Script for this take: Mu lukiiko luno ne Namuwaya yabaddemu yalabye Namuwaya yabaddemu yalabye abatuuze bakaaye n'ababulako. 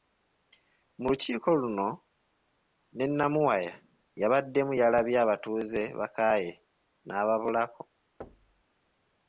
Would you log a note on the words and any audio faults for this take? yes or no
yes